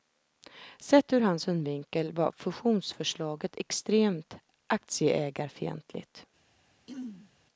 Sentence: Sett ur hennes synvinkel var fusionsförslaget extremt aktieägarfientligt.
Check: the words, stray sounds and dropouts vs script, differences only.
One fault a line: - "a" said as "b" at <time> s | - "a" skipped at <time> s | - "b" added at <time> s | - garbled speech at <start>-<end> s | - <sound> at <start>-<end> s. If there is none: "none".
- "hennes" said as "hans" at 1.2 s
- throat clearing at 6.9-7.3 s